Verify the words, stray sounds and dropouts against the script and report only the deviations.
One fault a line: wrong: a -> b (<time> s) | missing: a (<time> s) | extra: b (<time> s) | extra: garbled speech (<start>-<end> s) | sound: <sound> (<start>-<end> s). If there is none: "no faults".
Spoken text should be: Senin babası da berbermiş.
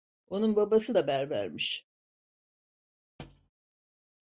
wrong: Senin -> Onun (0.3 s)
sound: thud (3.2-3.5 s)